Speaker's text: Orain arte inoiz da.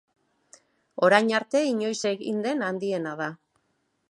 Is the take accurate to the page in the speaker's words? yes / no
no